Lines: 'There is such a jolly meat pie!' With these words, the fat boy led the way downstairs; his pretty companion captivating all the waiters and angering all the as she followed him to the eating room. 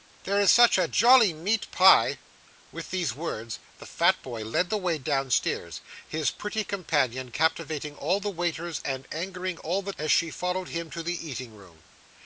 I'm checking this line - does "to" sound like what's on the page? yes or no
yes